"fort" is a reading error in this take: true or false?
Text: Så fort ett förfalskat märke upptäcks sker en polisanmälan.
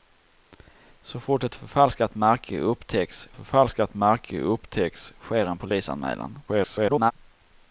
false